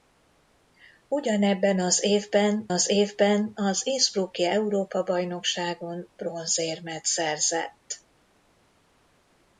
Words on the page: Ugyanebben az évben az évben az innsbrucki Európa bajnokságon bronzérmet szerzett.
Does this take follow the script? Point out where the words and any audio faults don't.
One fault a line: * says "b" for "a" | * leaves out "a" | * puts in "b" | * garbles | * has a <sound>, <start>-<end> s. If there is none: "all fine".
all fine